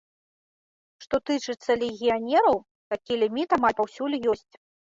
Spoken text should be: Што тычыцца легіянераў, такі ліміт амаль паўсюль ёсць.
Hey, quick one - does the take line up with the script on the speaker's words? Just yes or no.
yes